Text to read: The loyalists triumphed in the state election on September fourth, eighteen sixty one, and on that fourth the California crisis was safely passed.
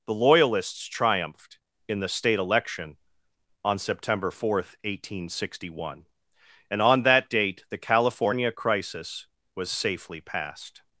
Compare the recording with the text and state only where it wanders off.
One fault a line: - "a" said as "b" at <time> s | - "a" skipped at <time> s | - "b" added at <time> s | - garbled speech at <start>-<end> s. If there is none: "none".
- "fourth" said as "date" at 7.3 s